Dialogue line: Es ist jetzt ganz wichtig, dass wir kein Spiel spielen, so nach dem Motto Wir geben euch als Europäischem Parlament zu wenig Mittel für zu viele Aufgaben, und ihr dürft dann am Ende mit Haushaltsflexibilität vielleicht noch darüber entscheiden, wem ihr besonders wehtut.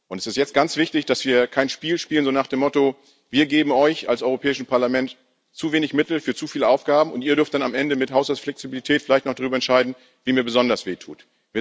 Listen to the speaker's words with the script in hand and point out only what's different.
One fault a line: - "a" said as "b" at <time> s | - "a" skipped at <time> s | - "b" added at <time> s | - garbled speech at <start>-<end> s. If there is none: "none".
none